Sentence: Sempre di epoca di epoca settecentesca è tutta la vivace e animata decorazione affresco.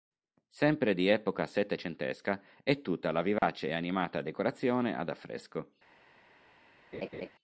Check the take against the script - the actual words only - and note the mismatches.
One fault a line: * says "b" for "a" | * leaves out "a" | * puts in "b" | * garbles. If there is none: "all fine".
* leaves out "di epoca"
* puts in "ad"